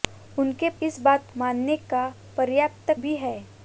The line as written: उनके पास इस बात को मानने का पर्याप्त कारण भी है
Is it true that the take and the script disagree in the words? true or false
true